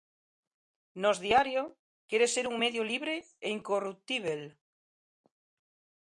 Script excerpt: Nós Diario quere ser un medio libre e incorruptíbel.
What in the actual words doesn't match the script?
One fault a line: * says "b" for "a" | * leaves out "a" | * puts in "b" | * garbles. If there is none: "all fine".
all fine